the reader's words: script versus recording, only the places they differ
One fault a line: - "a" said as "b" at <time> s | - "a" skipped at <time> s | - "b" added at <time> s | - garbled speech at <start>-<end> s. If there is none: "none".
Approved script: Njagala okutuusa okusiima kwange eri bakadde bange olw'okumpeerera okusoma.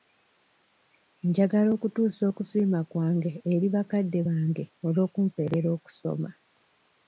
none